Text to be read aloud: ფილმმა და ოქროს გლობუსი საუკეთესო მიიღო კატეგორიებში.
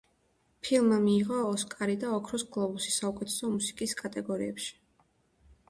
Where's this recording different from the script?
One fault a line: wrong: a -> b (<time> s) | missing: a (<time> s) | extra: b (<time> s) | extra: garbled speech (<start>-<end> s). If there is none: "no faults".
extra: მიიღო ოსკარი (1.0 s)
wrong: მიიღო -> მუსიკის (3.6 s)